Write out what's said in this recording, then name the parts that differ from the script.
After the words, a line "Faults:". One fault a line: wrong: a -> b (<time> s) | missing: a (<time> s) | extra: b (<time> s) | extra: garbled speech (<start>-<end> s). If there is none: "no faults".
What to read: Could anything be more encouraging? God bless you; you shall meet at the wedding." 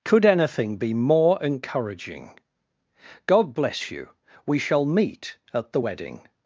Could anything be more encouraging? God bless you; we shall meet at the wedding."
Faults:
wrong: you -> we (4.5 s)